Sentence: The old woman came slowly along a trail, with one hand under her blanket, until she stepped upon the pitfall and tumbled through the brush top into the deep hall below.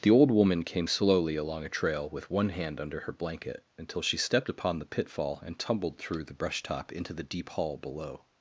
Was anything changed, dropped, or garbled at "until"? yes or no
no